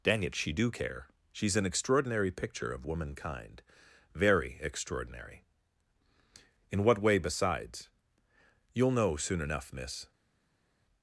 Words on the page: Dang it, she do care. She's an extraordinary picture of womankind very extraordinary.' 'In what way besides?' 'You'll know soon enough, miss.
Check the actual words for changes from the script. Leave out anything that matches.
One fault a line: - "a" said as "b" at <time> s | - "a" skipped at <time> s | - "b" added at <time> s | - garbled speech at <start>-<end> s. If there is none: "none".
none